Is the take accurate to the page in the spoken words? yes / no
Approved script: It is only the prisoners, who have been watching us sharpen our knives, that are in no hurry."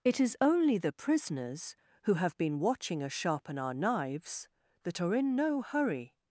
yes